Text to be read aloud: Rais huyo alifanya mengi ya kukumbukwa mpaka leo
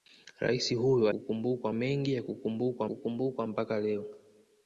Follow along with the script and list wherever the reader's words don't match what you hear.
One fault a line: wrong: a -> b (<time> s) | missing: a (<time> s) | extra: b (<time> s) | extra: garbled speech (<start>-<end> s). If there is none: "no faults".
wrong: alifanya -> kukumbukwa (1.1 s)
extra: kukumbukwa (2.8 s)